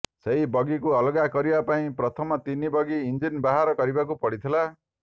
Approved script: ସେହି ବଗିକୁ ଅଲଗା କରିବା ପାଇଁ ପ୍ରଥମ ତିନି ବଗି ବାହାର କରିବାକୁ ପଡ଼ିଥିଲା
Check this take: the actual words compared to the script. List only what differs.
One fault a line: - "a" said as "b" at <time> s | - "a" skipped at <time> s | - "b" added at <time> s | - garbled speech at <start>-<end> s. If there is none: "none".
- "ଇଞ୍ଜିନ" added at 3.0 s